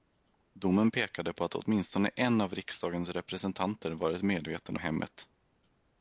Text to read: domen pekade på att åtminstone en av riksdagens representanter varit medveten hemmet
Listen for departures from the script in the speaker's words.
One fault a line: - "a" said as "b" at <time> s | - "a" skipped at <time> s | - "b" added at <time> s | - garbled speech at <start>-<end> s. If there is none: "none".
none